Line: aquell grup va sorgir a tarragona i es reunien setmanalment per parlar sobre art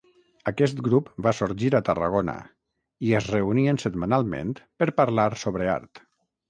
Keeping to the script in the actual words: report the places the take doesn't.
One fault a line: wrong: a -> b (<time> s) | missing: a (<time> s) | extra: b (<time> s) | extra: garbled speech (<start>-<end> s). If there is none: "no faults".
wrong: aquell -> aquest (0.5 s)